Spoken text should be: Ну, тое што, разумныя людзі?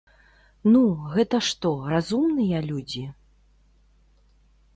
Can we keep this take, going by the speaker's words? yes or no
no